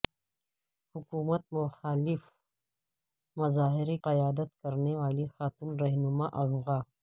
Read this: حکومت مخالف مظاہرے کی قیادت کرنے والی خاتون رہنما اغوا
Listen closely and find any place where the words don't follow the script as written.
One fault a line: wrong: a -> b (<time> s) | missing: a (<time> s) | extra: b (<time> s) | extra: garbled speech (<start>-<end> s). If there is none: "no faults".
missing: کی (4.0 s)